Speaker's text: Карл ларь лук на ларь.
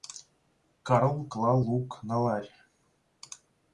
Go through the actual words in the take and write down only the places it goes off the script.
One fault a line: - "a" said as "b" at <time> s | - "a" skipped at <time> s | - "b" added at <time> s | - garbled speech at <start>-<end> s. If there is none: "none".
- "ларь" said as "клал" at 1.3 s